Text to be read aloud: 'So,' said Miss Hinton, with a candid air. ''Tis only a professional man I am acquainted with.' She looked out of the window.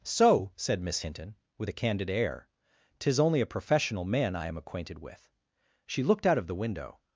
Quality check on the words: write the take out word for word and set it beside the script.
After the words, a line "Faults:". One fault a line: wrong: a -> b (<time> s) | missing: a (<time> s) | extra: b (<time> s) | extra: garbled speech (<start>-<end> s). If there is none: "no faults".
'So,' said Miss Hinton, with a candid air. ''Tis only a professional man I am acquainted with.' She looked out of the window.
Faults:
no faults